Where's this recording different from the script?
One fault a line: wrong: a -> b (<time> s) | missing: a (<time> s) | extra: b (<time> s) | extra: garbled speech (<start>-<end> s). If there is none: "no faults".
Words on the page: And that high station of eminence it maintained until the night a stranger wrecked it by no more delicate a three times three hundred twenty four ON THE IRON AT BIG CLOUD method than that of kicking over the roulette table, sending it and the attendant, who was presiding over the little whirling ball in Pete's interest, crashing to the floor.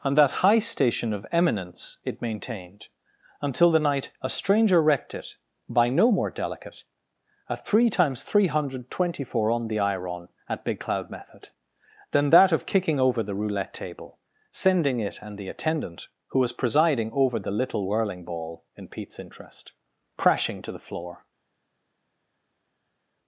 no faults